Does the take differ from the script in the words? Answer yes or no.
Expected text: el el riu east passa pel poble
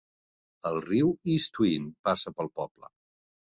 yes